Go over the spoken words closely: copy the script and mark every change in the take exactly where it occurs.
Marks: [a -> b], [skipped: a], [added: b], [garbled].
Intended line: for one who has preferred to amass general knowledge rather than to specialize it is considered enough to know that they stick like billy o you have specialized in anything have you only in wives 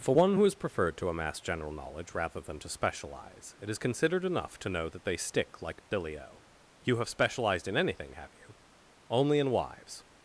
for one who has preferred to amass general knowledge rather than to specialize it is considered enough to know that they stick like billy o you have specialized in anything have you only in wives